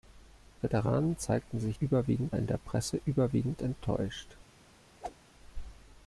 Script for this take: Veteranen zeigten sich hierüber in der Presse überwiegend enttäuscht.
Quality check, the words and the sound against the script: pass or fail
fail